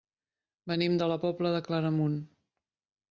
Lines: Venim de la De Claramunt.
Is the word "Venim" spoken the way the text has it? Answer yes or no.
yes